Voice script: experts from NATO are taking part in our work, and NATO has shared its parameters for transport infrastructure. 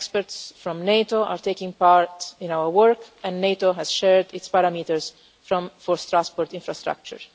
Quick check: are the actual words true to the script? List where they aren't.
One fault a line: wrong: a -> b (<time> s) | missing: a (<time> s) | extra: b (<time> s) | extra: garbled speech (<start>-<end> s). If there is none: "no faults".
no faults